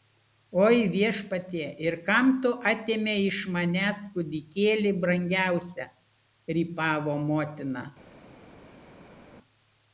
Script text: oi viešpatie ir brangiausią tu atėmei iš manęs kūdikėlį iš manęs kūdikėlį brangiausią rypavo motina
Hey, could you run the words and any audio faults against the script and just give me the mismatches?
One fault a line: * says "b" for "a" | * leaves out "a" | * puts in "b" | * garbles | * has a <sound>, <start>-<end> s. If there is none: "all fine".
* says "kam" for "brangiausią"
* leaves out "iš manęs kūdikėlį"